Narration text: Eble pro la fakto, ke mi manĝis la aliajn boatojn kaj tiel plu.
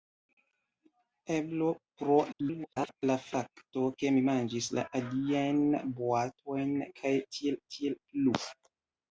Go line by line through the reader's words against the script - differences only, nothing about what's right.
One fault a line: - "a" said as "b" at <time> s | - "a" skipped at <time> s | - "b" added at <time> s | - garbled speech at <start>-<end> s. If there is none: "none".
- garbled speech at 2.3-3.0 s
- "tiel" added at 7.8 s